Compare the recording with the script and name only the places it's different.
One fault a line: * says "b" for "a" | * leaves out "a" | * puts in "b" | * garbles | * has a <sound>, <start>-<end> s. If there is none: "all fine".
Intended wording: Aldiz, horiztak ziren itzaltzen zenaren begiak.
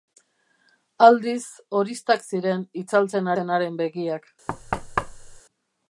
* has a thud, 4.5-5.4 s